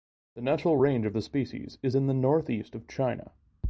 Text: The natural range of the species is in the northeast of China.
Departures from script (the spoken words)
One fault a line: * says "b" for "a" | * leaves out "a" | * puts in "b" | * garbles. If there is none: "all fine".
all fine